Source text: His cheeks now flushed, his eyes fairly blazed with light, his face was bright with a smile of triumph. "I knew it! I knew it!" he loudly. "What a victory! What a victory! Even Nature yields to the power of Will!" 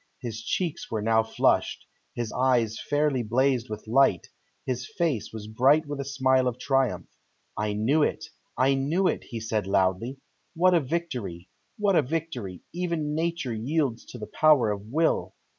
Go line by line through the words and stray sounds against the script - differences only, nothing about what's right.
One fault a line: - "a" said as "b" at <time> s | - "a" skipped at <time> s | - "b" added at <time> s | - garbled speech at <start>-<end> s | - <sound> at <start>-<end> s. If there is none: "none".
- "were" added at 0.9 s
- "said" added at 9.4 s